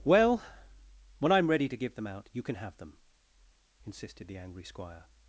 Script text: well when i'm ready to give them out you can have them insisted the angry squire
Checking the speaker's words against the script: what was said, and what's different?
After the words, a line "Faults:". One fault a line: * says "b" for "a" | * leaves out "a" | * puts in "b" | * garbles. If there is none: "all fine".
well when i'm ready to give them out you can have them insisted the angry squire
Faults:
all fine